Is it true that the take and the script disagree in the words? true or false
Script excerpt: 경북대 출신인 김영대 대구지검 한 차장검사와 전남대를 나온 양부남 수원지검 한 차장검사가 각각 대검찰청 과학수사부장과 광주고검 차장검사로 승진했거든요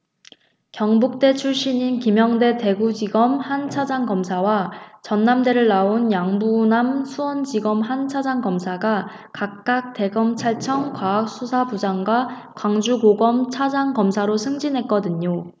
false